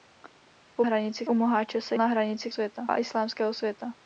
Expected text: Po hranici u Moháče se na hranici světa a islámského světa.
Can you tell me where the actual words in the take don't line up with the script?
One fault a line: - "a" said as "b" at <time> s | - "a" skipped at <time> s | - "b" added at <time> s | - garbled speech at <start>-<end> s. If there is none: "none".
none